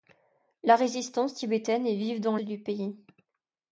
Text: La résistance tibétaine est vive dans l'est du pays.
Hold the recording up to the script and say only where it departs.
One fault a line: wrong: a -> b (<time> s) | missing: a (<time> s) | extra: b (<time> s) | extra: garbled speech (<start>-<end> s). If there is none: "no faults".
missing: l'est (2.4 s)